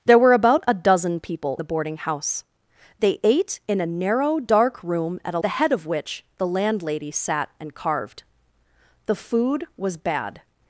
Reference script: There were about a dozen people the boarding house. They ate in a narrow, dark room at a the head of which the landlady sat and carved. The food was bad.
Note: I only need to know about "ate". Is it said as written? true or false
true